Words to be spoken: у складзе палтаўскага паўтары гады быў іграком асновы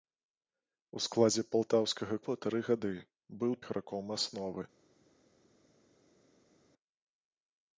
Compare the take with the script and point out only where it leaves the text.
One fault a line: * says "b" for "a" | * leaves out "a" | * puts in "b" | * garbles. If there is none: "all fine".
all fine